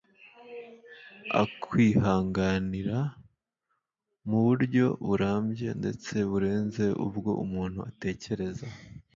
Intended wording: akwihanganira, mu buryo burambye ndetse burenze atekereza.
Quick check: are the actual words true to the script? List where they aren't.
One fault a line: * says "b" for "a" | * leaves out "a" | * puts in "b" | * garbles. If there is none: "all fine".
* puts in "ubwo umuntu"